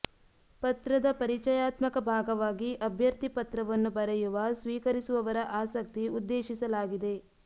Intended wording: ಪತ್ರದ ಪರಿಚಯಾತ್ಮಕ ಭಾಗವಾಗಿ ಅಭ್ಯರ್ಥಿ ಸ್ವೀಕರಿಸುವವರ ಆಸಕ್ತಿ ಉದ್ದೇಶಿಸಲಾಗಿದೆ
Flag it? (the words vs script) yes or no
yes